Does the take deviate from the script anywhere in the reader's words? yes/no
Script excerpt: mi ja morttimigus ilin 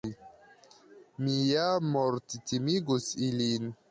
no